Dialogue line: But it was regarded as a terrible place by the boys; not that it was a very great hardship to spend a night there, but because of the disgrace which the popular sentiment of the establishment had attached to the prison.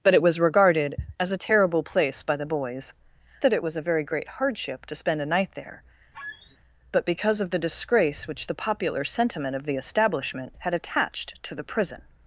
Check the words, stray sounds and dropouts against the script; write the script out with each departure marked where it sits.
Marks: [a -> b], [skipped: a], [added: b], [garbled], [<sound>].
But it was regarded as a terrible place by the boys; [skipped: not] that it was a very great hardship to spend a night there, [squeak] but because of the disgrace which the popular sentiment of the establishment had attached to the prison.